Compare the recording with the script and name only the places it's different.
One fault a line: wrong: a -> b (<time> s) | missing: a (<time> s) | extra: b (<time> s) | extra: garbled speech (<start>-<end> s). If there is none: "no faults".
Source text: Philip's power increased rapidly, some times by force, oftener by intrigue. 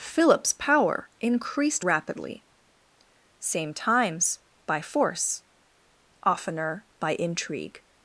wrong: some -> same (3.4 s)